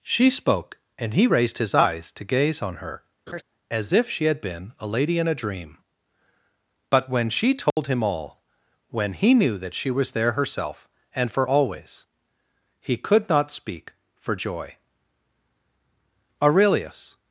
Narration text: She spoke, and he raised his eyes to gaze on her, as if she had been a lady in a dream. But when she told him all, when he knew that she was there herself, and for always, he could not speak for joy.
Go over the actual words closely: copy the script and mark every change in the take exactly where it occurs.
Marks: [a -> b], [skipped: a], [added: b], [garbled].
She spoke, and he raised his eyes to gaze on her, as if she had been a lady in a dream. But when she told him all, when he knew that she was there herself, and for always, he could not speak for joy. [added: Aurelius]